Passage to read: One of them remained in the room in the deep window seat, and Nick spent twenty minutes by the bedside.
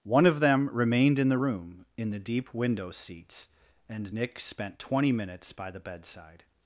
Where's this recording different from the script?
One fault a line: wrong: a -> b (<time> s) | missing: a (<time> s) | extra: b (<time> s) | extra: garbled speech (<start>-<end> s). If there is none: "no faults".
wrong: seat -> seats (2.9 s)